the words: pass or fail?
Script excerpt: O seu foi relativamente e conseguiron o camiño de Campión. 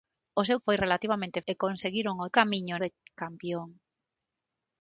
pass